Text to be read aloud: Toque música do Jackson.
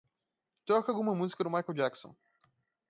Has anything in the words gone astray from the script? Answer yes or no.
yes